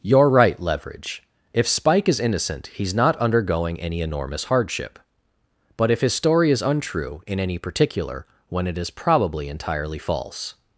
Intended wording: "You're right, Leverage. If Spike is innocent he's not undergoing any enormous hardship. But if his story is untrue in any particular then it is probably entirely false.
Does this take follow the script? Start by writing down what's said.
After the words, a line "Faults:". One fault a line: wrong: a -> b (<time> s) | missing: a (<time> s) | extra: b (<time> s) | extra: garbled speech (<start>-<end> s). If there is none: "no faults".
"You're right, Leverage. If Spike is innocent he's not undergoing any enormous hardship. But if his story is untrue in any particular when it is probably entirely false.
Faults:
wrong: then -> when (8.5 s)